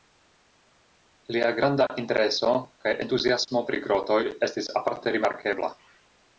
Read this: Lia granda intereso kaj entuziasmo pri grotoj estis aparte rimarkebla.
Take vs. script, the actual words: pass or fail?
pass